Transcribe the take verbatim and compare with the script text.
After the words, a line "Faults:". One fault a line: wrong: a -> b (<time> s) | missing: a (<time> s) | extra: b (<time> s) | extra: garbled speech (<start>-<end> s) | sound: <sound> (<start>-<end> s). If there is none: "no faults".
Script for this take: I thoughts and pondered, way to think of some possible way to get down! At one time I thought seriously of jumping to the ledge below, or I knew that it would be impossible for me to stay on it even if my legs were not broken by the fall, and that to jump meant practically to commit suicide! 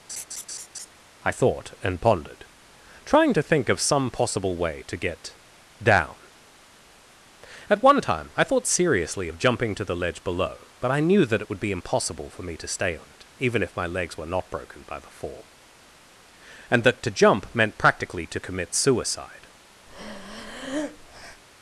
I thought and pondered, trying to think of some possible way to get down! At one time I thought seriously of jumping to the ledge below, but I knew that it would be impossible for me to stay on it even if my legs were not broken by the fall, and that to jump meant practically to commit suicide!
Faults:
sound: laugh (0.1-0.9 s)
wrong: thoughts -> thought (1.3 s)
wrong: way -> trying (3.0 s)
wrong: or -> but (10.8 s)
sound: breath (19.9-21.4 s)